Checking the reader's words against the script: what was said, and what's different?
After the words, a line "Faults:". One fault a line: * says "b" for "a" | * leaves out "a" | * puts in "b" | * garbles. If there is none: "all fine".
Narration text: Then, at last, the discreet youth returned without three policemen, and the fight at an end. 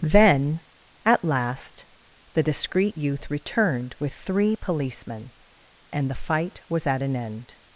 Then, at last, the discreet youth returned with three policemen, and the fight was at an end.
Faults:
* says "with" for "without"
* puts in "was"